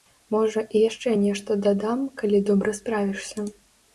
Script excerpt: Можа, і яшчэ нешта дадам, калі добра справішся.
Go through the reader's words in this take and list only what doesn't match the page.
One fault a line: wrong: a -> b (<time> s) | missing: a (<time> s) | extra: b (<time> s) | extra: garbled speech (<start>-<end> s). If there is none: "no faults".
no faults